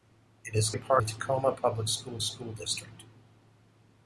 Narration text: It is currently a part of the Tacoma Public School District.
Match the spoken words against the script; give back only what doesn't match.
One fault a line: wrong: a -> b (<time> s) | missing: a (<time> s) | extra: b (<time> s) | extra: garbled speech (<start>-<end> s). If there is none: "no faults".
missing: currently (0.7 s)
missing: of (1.0 s)
extra: School (2.2 s)